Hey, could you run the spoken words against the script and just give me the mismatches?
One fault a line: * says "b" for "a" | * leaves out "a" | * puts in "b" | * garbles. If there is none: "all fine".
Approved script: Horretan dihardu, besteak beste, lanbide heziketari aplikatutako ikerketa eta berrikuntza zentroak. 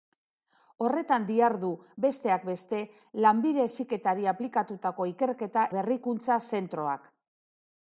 * leaves out "eta"